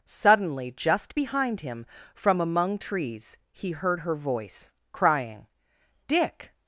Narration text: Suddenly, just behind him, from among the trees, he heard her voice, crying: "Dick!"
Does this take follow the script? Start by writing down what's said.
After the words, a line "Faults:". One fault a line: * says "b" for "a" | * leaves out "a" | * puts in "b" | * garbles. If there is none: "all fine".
Suddenly, just behind him, from among trees, he heard her voice, crying: "Dick!"
Faults:
* leaves out "the"